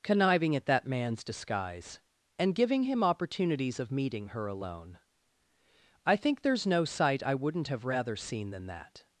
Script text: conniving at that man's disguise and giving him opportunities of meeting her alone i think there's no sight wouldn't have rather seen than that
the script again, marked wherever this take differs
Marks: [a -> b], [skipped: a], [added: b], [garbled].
conniving at that man's disguise and giving him opportunities of meeting her alone i think there's no sight [added: i] wouldn't have rather seen than that